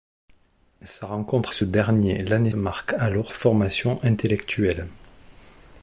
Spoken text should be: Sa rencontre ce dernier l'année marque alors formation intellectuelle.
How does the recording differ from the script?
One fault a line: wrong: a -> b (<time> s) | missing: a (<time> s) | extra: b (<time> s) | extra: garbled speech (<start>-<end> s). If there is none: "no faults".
no faults